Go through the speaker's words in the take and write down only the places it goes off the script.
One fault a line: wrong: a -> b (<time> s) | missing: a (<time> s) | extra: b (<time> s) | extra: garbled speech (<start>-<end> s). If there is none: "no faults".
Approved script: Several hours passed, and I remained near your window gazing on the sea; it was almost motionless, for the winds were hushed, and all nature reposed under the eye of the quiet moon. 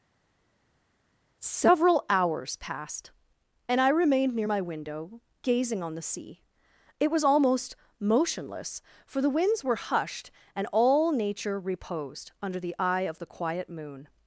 wrong: your -> my (4.5 s)